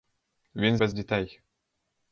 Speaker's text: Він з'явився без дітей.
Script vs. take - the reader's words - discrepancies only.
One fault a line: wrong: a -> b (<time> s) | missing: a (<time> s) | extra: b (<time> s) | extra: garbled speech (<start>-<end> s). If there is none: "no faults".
missing: з'явився (0.8 s)